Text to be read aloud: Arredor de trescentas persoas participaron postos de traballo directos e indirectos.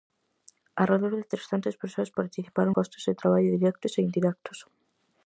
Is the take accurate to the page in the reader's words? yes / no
yes